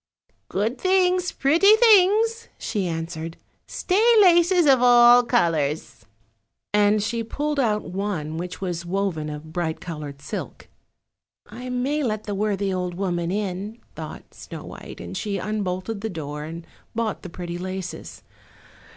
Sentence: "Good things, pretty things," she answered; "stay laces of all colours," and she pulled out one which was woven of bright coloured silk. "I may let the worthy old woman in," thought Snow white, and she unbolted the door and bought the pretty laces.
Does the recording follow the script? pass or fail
pass